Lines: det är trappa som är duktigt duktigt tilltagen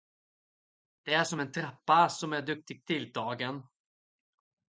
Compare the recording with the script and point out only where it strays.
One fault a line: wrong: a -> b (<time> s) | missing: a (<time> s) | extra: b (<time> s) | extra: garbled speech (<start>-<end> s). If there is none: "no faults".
extra: som en (1.2 s)
missing: duktigt (2.8 s)